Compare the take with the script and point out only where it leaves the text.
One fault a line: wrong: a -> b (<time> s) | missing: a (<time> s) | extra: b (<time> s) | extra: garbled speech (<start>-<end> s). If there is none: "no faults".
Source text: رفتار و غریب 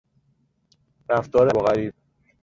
no faults